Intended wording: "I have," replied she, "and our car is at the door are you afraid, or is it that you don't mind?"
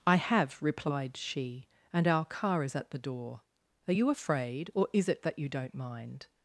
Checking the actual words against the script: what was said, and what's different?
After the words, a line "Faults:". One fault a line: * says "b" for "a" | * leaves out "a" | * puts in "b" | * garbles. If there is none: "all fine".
"I have," replied she, "and our car is at the door are you afraid, or is it that you don't mind?"
Faults:
all fine